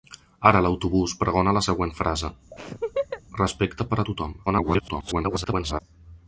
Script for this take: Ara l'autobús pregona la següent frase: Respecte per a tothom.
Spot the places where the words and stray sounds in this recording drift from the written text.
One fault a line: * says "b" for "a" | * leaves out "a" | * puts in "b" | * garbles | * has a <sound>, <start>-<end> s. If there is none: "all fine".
* has a laugh, 2.5-3.2 s
* garbles